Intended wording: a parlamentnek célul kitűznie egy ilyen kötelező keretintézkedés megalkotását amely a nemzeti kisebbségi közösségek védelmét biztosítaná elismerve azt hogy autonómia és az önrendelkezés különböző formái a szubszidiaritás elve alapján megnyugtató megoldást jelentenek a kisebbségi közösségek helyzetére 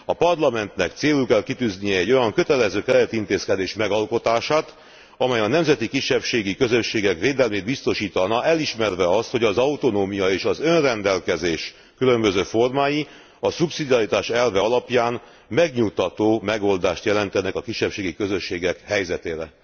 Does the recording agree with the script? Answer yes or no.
no